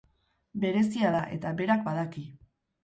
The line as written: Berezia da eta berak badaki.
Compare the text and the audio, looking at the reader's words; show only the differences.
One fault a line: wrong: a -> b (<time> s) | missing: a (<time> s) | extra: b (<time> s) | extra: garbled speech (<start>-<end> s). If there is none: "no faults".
no faults